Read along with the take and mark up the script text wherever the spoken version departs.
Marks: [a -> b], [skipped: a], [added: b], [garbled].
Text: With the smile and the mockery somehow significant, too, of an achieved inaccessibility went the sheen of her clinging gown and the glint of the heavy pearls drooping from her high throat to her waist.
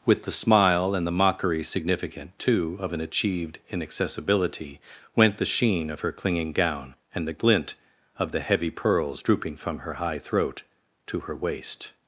With the smile and the mockery [skipped: somehow] significant, too, of an achieved inaccessibility went the sheen of her clinging gown and the glint of the heavy pearls drooping from her high throat to her waist.